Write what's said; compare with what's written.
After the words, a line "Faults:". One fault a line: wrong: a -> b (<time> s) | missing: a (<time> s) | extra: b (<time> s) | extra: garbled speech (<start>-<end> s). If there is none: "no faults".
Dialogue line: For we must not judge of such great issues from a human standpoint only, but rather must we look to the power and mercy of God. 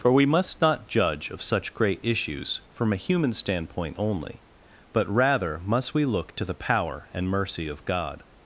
For we must not judge of such great issues from a human standpoint only, but rather must we look to the power and mercy of God.
Faults:
no faults